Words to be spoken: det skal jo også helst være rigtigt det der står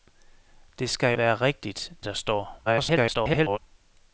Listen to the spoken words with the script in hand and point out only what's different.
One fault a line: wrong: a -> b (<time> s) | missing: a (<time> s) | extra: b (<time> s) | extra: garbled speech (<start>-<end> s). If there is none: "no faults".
missing: jo også helst (1.1 s)
missing: det (1.9 s)
extra: garbled speech (2.7-3.6 s)